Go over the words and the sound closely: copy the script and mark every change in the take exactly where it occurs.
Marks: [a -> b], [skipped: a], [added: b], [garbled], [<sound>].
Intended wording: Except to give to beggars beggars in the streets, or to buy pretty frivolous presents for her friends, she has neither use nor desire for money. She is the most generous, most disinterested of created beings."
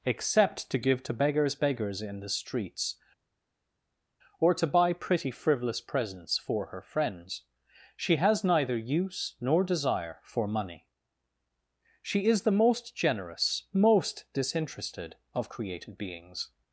Except to give to beggars beggars in the streets, or to buy pretty frivolous presents for her friends, she has neither use nor desire for money. She is the most generous, most disinterested of created beings."